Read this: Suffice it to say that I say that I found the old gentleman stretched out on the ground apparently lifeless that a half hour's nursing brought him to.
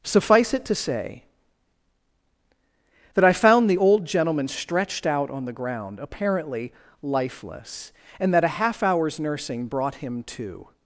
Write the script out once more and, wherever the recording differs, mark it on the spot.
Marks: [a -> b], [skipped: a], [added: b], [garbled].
Suffice it to say that I [skipped: say that I] found the old gentleman stretched out on the ground apparently lifeless [added: and] that a half hour's nursing brought him to.